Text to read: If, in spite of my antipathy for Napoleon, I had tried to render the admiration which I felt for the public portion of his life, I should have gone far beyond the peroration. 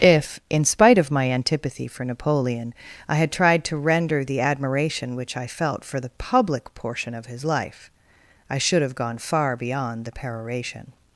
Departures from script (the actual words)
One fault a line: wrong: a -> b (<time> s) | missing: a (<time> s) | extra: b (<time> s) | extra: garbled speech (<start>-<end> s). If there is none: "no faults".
no faults